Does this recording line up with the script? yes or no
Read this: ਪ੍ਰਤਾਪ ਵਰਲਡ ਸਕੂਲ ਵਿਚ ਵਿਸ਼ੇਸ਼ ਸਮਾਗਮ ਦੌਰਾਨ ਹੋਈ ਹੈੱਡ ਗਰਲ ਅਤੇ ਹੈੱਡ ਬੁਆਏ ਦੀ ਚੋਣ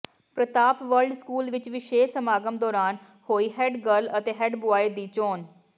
yes